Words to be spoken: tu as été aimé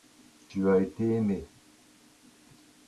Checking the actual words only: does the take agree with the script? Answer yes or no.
yes